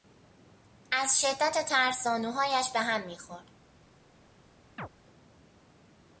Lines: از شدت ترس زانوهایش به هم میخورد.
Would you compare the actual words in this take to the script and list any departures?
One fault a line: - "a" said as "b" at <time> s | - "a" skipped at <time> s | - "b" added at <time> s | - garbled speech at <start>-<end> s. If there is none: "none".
none